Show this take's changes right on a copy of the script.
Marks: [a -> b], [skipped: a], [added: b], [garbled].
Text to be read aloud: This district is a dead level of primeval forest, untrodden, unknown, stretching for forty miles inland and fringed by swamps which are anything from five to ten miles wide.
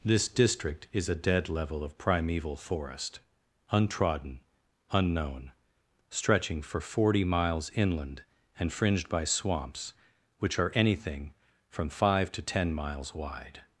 This district is a dead level of primeval forest, untrodden, unknown, stretching for forty miles inland and fringed by swamps which are anything from five to ten miles wide.